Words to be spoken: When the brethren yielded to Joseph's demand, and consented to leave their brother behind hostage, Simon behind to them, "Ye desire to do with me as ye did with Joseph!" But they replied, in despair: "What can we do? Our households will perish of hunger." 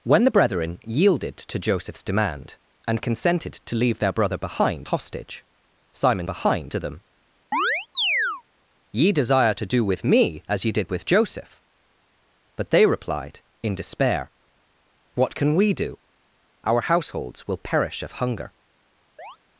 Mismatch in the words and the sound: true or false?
true